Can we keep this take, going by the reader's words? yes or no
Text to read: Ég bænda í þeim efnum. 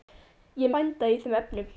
yes